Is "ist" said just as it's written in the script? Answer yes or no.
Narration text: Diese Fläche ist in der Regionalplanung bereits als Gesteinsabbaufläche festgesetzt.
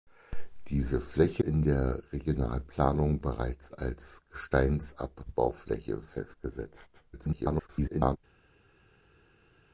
no